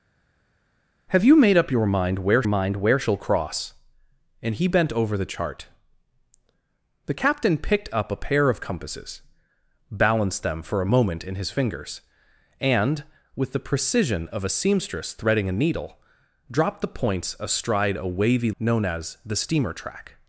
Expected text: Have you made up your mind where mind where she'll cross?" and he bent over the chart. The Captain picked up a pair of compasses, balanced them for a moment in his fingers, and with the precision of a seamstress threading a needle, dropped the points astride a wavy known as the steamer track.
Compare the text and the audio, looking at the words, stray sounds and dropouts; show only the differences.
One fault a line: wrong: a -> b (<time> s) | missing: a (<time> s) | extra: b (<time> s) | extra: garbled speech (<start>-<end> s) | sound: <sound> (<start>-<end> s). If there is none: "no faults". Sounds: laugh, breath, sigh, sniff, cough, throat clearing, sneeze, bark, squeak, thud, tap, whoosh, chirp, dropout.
no faults